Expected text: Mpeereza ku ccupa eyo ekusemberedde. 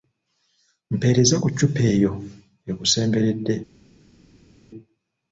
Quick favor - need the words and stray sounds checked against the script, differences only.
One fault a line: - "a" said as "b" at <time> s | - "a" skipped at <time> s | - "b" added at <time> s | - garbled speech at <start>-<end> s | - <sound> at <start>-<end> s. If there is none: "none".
none